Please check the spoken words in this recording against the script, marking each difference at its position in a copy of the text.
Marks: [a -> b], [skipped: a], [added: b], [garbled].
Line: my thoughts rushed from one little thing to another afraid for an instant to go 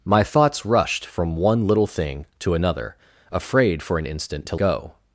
my thoughts rushed from one little thing to another afraid for an instant to go